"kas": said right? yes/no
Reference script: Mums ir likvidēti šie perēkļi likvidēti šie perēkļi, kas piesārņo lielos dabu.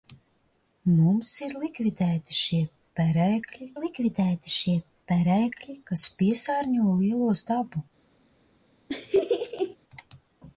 yes